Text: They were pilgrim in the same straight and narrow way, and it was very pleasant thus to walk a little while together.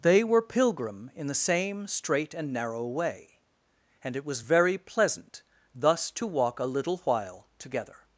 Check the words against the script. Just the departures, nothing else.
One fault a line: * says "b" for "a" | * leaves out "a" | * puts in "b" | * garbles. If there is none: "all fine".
all fine